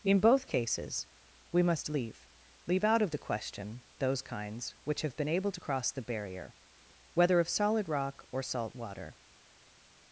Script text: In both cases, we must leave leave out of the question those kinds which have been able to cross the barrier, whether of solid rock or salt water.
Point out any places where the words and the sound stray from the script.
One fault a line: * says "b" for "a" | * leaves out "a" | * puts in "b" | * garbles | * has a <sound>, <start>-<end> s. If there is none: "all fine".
all fine